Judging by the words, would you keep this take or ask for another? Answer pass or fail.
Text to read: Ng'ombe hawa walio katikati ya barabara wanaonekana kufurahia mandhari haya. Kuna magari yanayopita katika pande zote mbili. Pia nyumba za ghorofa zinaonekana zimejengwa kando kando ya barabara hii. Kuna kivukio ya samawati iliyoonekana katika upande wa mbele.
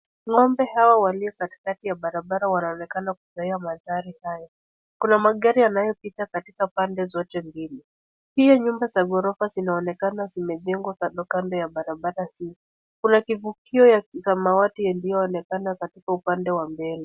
pass